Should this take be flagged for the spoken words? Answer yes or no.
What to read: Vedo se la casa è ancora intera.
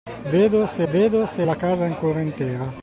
yes